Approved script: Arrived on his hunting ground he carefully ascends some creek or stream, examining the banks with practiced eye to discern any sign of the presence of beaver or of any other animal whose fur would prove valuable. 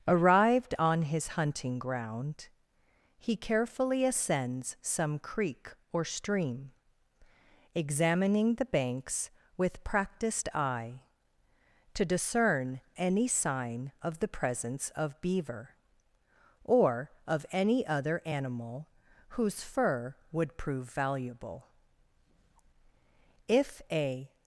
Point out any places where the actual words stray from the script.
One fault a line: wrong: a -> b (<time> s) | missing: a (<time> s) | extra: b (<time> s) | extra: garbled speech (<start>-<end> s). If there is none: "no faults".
extra: If a (23.5 s)